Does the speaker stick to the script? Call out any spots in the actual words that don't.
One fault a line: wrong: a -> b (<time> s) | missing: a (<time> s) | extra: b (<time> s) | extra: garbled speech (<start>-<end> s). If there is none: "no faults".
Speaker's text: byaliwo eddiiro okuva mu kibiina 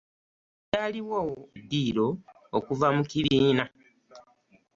no faults